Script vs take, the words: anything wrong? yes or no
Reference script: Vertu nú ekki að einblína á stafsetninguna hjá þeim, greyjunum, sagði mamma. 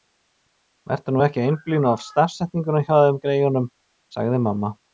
no